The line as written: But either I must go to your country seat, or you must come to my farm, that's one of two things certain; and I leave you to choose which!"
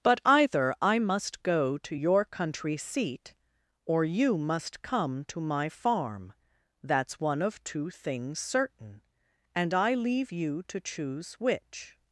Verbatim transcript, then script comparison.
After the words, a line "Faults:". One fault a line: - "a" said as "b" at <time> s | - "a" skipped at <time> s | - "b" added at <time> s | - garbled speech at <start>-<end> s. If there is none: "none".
But either I must go to your country seat, or you must come to my farm, that's one of two things certain; and I leave you to choose which!"
Faults:
none